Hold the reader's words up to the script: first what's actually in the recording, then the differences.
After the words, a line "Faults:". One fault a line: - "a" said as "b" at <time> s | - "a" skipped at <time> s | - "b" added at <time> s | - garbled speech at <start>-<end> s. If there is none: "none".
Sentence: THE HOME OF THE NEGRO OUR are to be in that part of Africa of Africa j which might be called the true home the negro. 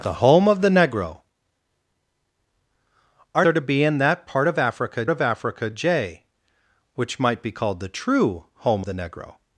THE HOME OF THE NEGRO OUR are to be in that part of Africa of Africa j which might be called the true home the negro.
Faults:
none